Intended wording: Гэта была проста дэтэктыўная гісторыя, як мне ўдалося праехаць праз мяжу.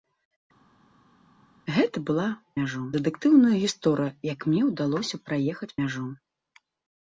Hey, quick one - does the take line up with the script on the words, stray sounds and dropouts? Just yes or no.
no